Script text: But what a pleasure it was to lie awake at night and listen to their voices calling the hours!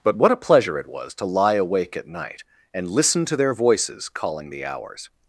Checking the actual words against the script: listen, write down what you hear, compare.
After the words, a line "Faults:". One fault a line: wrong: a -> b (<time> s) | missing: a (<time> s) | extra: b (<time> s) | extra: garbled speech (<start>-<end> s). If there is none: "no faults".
But what a pleasure it was to lie awake at night and listen to their voices calling the hours!
Faults:
no faults